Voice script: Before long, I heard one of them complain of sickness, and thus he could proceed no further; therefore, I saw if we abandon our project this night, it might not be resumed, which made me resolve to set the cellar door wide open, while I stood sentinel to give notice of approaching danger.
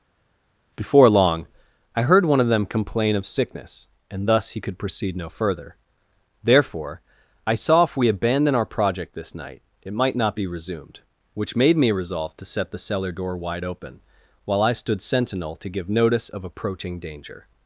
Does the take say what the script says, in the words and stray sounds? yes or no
yes